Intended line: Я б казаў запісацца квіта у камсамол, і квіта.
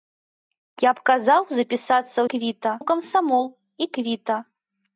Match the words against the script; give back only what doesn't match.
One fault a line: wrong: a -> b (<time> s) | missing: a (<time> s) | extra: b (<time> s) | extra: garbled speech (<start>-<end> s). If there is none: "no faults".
no faults